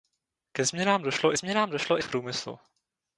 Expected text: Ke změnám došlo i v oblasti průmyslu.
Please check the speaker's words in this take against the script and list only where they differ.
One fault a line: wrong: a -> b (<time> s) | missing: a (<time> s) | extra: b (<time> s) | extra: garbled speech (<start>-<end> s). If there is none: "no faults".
extra: změnám došlo (1.4 s)
missing: oblasti (2.1 s)